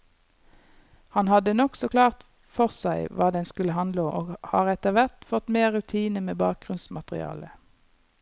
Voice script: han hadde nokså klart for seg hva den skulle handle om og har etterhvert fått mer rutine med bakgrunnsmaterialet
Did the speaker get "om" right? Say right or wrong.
wrong